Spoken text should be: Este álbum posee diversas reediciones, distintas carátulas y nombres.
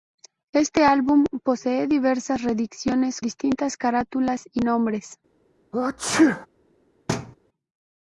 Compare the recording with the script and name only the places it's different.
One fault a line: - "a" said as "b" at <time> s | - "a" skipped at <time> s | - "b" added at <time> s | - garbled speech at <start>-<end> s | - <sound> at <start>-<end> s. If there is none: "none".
- sneeze at 5.7-6.5 s
- thud at 7.1-7.4 s